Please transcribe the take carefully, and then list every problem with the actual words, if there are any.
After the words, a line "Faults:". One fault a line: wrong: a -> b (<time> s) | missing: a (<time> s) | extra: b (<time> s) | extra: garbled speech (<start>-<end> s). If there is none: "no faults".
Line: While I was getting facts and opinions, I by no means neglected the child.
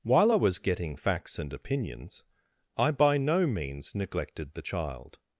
While I was getting facts and opinions, I by no means neglected the child.
Faults:
no faults